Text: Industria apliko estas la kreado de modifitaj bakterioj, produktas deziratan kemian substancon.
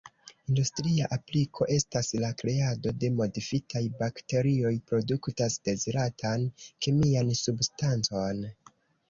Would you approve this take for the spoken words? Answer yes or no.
yes